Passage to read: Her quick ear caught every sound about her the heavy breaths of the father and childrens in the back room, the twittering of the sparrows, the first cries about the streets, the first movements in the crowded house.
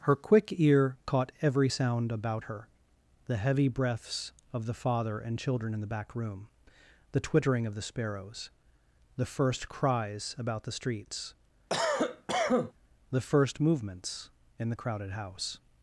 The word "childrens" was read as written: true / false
false